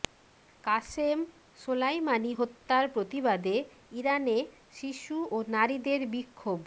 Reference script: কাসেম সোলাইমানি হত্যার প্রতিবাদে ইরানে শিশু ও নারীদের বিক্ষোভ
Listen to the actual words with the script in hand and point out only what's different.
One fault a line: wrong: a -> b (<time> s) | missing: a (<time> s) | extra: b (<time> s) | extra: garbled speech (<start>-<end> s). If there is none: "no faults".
no faults